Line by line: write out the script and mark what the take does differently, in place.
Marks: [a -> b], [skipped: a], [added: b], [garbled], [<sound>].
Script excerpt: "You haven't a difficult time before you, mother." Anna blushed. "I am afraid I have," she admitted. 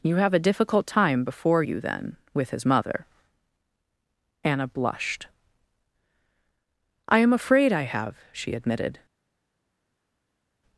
"You [haven't -> have] a difficult time before you, [added: then with his] mother." Anna blushed. "I am afraid I have," she admitted.